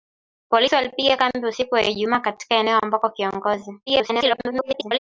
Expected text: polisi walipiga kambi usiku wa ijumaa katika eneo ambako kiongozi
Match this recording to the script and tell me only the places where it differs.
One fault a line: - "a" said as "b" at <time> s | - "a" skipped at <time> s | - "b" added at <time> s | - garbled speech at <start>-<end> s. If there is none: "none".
- garbled speech at 3.9-5.0 s